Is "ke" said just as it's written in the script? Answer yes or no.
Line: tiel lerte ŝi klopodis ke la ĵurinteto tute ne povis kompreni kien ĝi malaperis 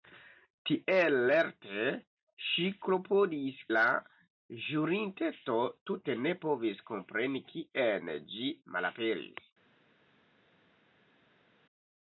no